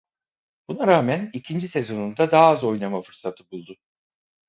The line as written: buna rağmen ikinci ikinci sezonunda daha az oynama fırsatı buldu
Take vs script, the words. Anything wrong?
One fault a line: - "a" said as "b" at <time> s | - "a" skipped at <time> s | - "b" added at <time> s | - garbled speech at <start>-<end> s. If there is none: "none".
- "ikinci" skipped at 1.7 s